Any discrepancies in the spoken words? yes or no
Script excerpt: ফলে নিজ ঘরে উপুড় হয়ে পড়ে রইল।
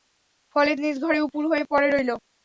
no